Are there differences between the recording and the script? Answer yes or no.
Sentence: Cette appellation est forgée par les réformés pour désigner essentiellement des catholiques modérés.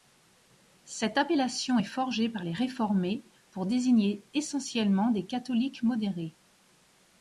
no